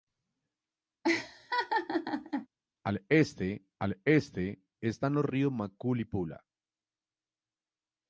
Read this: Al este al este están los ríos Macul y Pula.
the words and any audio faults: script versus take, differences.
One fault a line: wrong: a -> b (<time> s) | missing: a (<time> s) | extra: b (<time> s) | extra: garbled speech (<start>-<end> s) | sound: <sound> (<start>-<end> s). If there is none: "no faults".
sound: laugh (1.0-2.5 s)